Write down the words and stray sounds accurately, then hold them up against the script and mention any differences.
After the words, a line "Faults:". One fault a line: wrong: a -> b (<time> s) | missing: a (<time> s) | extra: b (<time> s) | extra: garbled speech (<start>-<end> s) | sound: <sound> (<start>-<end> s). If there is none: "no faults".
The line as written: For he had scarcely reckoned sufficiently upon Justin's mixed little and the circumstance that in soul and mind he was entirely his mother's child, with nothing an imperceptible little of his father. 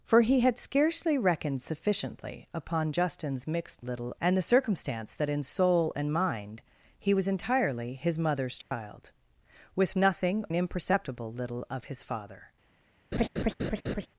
For he had scarcely reckoned sufficiently upon Justin's mixed little and the circumstance that in soul and mind he was entirely his mother's child, with nothing an imperceptible little of his father.
Faults:
sound: dropout (8.6-8.7 s)
sound: laugh (13.1-14.1 s)